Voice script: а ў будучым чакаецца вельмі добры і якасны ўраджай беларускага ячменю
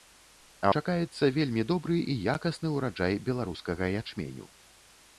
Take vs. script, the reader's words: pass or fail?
fail